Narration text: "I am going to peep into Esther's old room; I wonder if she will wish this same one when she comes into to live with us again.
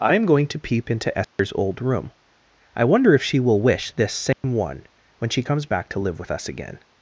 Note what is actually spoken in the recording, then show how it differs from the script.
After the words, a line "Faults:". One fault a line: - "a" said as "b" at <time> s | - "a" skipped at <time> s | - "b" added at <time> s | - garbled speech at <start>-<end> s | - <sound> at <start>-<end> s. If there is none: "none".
"I am going to peep into Esther's old room; I wonder if she will wish this same one when she comes back to live with us again.
Faults:
- dropout at 1.2-1.4 s
- dropout at 4.3-4.4 s
- "into" said as "back" at 5.7 s